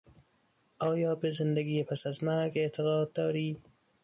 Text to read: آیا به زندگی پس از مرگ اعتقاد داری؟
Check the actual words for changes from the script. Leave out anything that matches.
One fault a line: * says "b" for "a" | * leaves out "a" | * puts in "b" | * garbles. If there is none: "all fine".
all fine